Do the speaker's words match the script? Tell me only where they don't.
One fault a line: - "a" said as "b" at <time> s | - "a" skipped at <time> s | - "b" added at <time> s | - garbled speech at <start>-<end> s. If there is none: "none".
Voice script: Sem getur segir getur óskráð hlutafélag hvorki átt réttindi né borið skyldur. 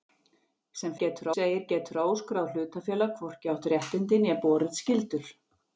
none